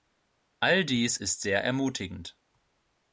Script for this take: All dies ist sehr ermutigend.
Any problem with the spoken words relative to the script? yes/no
no